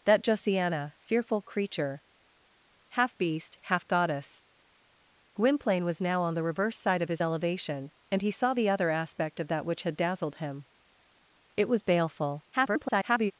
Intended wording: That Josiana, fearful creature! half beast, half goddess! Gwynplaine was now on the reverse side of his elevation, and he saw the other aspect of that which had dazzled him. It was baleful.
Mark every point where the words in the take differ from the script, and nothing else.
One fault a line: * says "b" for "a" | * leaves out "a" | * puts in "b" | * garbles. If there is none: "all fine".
* garbles